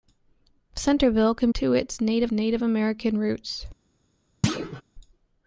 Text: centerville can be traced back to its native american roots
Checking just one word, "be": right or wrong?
wrong